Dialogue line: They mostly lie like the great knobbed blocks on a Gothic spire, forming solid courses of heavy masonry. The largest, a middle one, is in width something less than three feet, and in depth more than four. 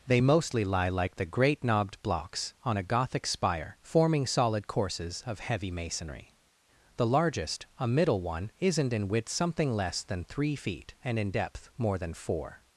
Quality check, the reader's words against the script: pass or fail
fail